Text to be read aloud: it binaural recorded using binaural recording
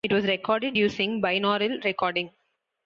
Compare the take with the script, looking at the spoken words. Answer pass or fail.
fail